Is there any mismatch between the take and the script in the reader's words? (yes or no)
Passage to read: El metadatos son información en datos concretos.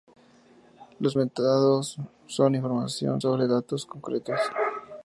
yes